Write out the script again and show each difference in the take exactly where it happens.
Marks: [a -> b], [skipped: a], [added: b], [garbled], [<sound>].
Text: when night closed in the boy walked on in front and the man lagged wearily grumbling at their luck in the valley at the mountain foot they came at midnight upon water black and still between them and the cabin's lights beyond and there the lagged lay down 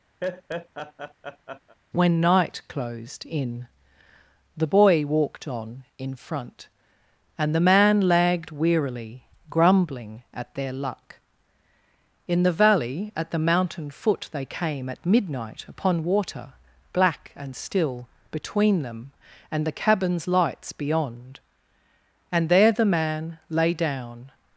[laugh] when night closed in the boy walked on in front and the man lagged wearily grumbling at their luck in the valley at the mountain foot they came at midnight upon water black and still between them and the cabin's lights beyond and there the [lagged -> man] lay down